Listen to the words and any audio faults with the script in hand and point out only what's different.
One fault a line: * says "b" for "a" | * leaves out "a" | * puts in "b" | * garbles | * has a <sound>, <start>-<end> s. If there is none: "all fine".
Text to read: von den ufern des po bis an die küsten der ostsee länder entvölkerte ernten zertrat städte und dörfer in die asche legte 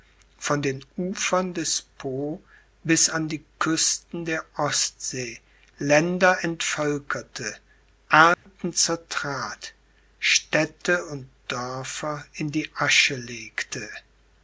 * has a dropout, 8.3-8.5 s